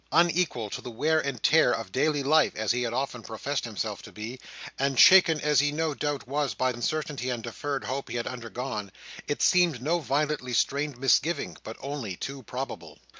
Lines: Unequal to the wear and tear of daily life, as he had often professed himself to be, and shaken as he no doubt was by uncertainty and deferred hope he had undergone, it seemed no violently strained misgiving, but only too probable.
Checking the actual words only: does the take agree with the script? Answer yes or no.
yes